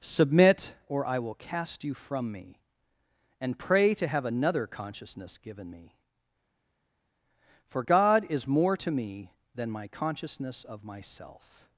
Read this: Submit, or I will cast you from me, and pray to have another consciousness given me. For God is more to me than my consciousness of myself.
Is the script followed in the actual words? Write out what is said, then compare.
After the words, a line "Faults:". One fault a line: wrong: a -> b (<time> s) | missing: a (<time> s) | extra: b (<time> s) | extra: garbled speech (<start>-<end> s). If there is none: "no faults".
Submit, or I will cast you from me, and pray to have another consciousness given me. For God is more to me than my consciousness of myself.
Faults:
no faults